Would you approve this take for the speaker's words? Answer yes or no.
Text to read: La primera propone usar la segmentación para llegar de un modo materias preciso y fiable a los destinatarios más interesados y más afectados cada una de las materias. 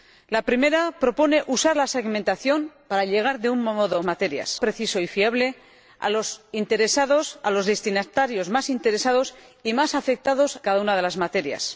yes